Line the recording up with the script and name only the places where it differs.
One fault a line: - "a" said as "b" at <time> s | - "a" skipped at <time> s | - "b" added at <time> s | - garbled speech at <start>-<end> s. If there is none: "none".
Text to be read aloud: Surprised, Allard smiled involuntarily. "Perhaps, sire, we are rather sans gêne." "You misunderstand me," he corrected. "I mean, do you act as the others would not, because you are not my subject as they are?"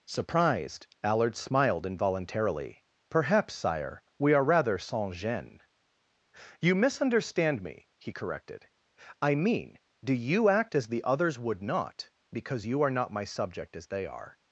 none